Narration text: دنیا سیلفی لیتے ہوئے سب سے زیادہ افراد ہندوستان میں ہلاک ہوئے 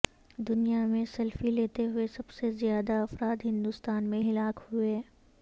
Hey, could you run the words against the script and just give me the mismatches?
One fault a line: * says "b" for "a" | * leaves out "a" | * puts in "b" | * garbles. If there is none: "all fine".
* puts in "میں"